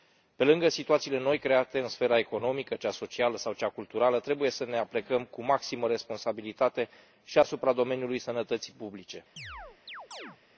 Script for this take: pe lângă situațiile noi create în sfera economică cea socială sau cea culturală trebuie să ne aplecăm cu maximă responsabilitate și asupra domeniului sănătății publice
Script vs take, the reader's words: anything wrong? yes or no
no